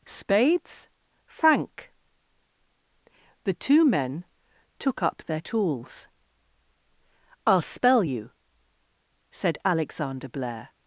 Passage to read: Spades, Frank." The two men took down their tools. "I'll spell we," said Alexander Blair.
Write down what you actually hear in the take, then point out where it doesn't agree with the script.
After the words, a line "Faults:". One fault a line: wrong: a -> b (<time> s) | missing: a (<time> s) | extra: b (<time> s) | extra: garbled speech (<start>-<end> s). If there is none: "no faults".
Spades, Frank." The two men took up their tools. "I'll spell you," said Alexander Blair.
Faults:
wrong: down -> up (5.0 s)
wrong: we -> you (8.0 s)